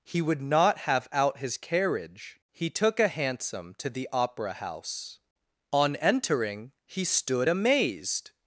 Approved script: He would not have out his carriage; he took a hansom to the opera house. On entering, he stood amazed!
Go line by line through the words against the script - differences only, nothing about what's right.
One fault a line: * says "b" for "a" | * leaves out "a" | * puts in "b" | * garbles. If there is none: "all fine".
all fine